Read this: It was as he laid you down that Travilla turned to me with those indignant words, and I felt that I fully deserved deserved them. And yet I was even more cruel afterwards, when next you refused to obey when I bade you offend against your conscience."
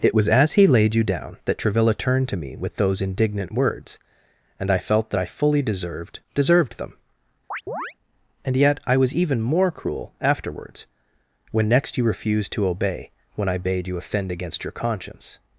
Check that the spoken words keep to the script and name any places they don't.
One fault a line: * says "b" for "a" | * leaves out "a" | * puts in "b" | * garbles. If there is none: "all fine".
all fine